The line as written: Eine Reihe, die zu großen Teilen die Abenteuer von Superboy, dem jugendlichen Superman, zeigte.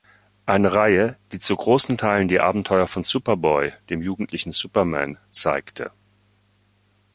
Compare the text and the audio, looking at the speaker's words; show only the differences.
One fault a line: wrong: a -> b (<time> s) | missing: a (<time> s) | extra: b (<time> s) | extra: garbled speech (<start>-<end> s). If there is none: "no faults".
no faults